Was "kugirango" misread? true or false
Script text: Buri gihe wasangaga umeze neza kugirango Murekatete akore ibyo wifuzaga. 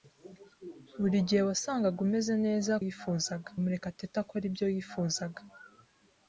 true